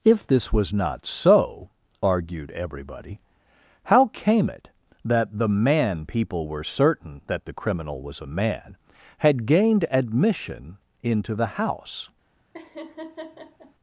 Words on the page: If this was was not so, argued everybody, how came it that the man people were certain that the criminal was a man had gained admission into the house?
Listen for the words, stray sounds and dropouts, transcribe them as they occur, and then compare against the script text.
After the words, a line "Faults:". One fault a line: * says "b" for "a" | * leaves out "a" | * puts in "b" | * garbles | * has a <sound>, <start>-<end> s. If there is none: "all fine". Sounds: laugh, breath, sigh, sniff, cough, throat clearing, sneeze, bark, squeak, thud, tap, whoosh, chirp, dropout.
If this was not so, argued everybody, how came it that the man people were certain that the criminal was a man had gained admission into the house?
Faults:
* leaves out "was"
* has a laugh, 12.5-13.8 s